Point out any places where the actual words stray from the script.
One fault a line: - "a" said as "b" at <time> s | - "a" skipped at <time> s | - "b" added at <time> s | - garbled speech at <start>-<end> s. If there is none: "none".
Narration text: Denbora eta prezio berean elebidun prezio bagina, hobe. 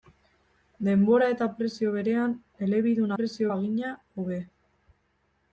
none